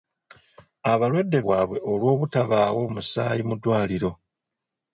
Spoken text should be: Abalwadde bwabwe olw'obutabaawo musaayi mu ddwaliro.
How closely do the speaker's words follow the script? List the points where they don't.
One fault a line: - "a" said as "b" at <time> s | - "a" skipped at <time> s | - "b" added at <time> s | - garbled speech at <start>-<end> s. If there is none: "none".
none